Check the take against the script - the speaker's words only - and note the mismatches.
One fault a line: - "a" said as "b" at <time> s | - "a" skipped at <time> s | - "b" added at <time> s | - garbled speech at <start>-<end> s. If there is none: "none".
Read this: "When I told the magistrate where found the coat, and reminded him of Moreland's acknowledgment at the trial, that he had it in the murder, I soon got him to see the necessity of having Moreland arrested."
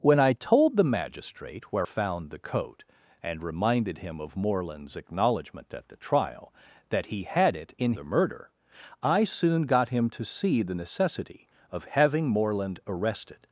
none